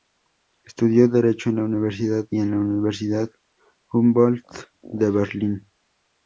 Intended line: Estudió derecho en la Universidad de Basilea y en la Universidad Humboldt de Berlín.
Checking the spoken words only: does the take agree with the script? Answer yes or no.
no